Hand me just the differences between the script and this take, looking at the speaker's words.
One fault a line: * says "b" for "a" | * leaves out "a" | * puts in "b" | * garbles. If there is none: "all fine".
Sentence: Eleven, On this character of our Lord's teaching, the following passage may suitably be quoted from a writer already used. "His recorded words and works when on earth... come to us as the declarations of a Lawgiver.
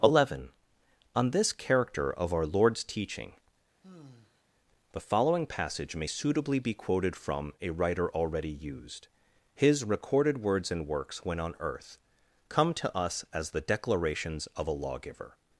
all fine